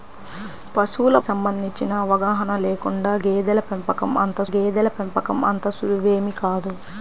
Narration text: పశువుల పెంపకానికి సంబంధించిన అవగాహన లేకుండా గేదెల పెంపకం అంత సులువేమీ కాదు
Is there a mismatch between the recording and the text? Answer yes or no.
yes